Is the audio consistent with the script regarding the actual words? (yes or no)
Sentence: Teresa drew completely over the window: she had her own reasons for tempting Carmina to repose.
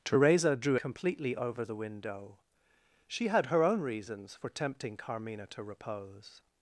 yes